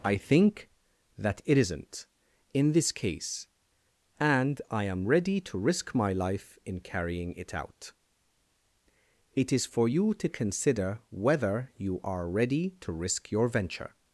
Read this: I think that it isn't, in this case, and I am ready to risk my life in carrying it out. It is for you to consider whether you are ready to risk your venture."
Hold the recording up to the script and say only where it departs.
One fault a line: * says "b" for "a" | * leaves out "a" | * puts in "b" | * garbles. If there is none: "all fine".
all fine